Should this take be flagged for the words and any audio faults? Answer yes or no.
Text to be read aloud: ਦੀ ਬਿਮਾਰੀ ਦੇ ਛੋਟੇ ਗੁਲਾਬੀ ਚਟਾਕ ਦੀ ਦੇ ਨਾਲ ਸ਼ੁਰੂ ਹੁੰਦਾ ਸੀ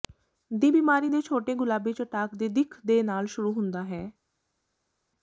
yes